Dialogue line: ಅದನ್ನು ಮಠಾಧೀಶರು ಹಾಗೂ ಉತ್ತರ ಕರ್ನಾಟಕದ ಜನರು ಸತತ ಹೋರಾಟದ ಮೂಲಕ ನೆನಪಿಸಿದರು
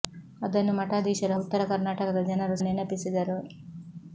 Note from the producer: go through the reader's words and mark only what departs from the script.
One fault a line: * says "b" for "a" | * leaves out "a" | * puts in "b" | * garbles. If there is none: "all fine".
* leaves out "ಹಾಗೂ"
* leaves out "ಸತತ ಹೋರಾಟದ ಮೂಲಕ"